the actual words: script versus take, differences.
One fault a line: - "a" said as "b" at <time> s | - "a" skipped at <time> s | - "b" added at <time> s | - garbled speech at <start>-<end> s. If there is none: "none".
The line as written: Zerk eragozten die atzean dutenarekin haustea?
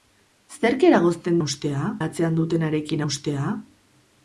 - "die" said as "haustea" at 1.4 s